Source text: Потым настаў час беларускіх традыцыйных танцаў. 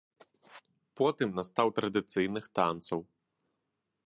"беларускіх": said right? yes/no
no